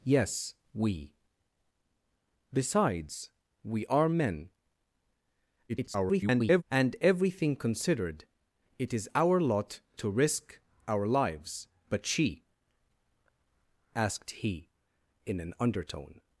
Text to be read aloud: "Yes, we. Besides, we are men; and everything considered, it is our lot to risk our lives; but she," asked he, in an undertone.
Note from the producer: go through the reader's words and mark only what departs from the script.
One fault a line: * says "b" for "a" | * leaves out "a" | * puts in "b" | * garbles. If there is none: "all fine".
* garbles